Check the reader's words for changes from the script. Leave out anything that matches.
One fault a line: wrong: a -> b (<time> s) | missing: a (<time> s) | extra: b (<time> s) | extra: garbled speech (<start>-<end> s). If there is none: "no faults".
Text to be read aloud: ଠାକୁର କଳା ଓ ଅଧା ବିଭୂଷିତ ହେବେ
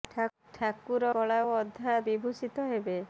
no faults